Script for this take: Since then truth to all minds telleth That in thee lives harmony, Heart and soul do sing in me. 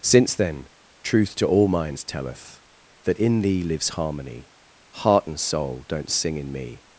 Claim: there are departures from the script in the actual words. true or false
true